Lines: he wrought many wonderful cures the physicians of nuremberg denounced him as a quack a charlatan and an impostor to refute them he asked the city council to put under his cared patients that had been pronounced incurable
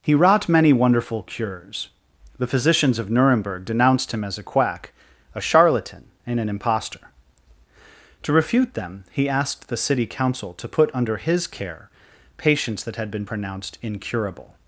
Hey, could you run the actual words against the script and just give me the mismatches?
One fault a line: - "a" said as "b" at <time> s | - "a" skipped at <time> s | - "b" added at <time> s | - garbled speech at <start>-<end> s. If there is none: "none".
- "cared" said as "care" at 11.4 s